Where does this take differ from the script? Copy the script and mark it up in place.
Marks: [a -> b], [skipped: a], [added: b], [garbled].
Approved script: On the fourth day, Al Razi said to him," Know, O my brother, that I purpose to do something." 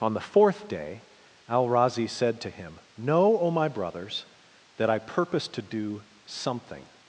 On the fourth day, Al Razi said to him," Know, O my [brother, -> brothers] that I purpose to do something."